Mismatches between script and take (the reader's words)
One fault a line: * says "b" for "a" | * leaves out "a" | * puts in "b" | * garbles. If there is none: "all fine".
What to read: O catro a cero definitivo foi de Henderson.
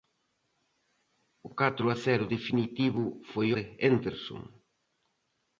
all fine